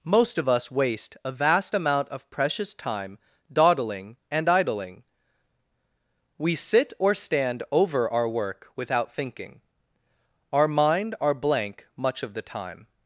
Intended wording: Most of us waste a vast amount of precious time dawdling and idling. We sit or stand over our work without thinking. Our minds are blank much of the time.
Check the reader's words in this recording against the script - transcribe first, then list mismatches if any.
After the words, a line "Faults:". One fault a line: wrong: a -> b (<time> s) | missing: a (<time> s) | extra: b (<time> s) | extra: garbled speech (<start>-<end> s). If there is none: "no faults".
Most of us waste a vast amount of precious time dawdling and idling. We sit or stand over our work without thinking. Our mind are blank much of the time.
Faults:
wrong: minds -> mind (10.7 s)